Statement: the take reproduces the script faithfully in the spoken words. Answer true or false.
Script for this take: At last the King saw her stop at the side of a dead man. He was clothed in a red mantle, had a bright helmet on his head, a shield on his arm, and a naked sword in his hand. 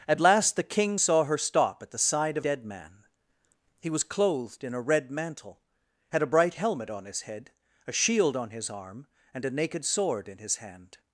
false